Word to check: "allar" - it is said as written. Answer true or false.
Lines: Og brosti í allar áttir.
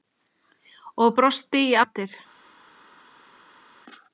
false